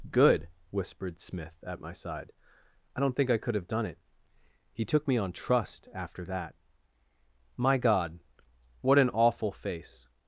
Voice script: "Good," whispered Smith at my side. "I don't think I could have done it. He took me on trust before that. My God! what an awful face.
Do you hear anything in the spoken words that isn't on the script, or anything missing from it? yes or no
yes